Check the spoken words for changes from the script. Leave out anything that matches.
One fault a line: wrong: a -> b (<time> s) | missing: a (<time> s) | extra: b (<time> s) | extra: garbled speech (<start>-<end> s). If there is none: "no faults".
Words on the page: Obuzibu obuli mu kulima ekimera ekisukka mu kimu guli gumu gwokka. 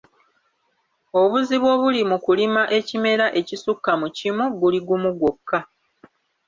no faults